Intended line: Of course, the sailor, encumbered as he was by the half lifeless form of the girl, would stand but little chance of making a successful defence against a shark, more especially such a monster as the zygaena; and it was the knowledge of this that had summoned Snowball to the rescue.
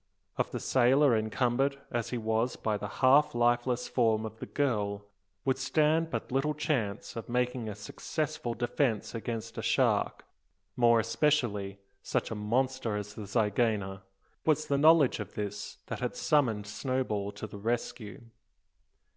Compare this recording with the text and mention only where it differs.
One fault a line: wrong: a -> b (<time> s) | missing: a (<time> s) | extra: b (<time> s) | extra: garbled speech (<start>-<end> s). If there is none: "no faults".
missing: course (0.5 s)
missing: and it (14.0 s)